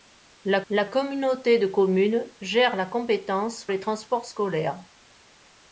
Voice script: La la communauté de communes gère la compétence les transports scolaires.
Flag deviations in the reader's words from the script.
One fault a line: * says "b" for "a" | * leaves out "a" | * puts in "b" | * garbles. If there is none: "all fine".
all fine